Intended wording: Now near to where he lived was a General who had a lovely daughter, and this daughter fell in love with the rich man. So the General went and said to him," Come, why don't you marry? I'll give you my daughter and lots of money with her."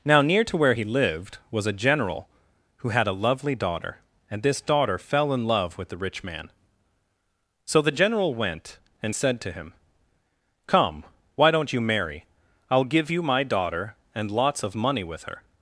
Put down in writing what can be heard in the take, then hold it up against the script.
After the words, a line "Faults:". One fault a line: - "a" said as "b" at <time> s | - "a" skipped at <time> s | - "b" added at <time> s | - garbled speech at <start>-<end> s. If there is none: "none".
Now near to where he lived was a General who had a lovely daughter, and this daughter fell in love with the rich man. So the General went and said to him," Come, why don't you marry? I'll give you my daughter and lots of money with her."
Faults:
none